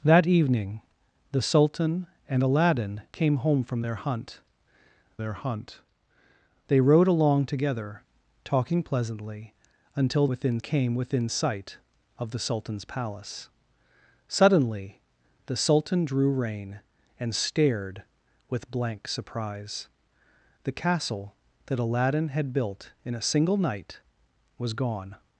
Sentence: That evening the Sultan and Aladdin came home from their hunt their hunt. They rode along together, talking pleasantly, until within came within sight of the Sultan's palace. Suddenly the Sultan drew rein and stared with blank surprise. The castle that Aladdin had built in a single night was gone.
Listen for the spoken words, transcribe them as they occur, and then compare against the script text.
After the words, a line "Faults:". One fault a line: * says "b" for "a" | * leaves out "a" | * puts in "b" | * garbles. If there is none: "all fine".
That evening the Sultan and Aladdin came home from their hunt their hunt. They rode along together, talking pleasantly, until within came within sight of the Sultan's palace. Suddenly the Sultan drew rein and stared with blank surprise. The castle that Aladdin had built in a single night was gone.
Faults:
all fine